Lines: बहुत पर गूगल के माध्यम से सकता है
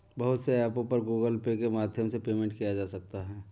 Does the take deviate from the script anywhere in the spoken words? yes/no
yes